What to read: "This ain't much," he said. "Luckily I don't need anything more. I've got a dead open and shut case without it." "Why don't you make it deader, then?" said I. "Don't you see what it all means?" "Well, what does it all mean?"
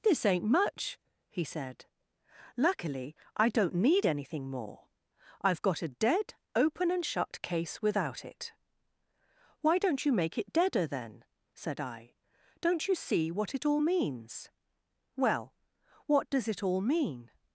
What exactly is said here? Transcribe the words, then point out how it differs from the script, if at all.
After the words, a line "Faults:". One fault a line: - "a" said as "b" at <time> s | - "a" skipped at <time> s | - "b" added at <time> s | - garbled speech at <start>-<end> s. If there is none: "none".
"This ain't much," he said. "Luckily I don't need anything more. I've got a dead open and shut case without it." "Why don't you make it deader, then?" said I. "Don't you see what it all means?" "Well, what does it all mean?"
Faults:
none